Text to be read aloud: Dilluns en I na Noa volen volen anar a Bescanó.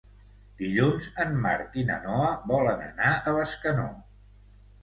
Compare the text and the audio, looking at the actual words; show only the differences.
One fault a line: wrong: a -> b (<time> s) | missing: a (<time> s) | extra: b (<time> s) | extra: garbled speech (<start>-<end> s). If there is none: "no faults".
extra: Marc (1.4 s)
missing: volen (2.8 s)